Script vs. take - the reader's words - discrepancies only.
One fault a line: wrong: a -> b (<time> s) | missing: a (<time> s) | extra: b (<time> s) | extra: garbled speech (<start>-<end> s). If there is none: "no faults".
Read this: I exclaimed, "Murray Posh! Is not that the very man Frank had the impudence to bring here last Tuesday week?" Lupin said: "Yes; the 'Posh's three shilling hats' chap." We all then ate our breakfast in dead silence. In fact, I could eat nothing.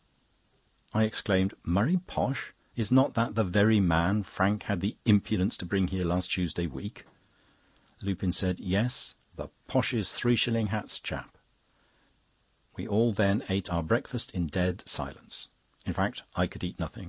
no faults